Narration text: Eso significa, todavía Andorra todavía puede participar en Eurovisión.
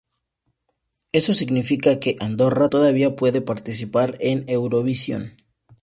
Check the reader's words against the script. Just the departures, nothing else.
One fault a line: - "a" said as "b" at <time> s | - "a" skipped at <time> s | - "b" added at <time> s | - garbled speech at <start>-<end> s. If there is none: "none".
- "todavía" said as "que" at 2.0 s